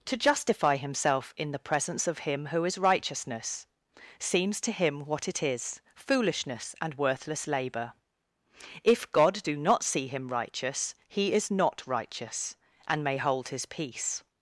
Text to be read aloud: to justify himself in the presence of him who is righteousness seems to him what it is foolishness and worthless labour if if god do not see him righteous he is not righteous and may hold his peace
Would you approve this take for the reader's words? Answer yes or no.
no